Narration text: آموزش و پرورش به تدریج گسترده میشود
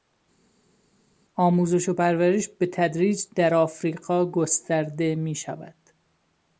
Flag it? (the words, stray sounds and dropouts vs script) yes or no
yes